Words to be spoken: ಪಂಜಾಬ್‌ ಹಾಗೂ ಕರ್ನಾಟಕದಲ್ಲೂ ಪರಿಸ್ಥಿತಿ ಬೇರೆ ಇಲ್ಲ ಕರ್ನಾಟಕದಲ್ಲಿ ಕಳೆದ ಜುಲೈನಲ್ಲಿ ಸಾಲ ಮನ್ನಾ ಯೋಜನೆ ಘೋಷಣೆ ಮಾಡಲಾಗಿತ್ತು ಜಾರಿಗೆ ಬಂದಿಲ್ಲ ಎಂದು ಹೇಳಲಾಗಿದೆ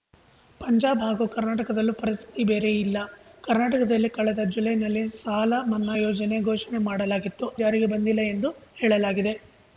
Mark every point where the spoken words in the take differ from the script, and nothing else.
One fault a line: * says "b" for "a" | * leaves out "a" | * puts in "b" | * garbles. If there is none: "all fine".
all fine